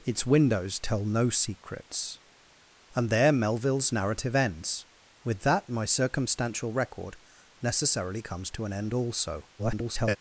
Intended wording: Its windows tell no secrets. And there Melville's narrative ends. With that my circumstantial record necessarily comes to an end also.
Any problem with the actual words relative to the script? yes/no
yes